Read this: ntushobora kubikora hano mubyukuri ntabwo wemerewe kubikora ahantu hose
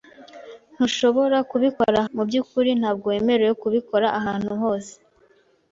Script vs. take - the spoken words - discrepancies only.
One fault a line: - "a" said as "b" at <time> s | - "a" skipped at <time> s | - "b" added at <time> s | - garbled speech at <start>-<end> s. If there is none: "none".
- "hano" skipped at 2.0 s